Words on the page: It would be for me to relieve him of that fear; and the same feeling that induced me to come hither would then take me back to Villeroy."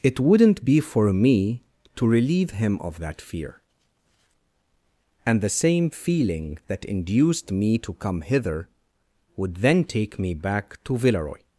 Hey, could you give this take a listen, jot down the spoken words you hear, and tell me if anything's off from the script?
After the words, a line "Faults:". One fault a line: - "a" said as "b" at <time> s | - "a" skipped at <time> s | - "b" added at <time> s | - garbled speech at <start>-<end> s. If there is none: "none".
It wouldn't be for me to relieve him of that fear; and the same feeling that induced me to come hither would then take me back to Villeroy."
Faults:
- "would" said as "wouldn't" at 0.2 s